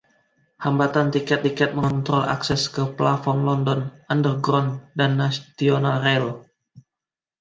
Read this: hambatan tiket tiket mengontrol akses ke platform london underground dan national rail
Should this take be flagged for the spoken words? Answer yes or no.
no